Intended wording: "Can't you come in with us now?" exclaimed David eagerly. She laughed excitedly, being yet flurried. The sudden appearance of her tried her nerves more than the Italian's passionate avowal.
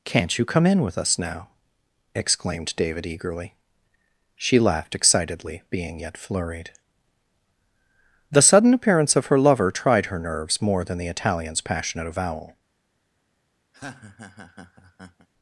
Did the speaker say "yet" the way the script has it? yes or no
yes